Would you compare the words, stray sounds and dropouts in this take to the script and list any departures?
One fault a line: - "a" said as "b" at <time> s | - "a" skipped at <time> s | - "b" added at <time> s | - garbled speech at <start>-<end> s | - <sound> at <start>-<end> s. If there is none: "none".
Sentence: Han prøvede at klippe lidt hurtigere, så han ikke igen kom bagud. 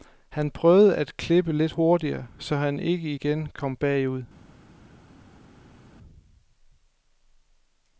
none